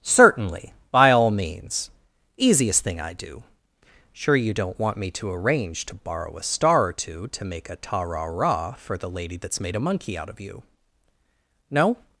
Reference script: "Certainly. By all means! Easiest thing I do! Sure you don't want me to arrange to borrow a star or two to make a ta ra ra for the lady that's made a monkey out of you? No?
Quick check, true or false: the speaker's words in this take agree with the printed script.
true